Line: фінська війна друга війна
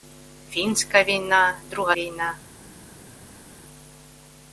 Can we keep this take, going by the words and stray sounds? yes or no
yes